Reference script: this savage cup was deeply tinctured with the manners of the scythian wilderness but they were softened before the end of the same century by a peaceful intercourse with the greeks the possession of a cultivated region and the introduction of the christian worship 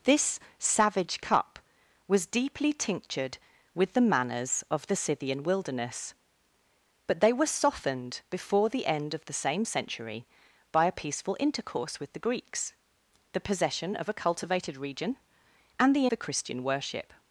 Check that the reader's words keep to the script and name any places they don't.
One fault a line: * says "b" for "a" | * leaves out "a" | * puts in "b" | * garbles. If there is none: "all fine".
* leaves out "introduction of"